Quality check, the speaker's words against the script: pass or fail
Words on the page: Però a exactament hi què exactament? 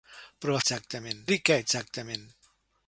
pass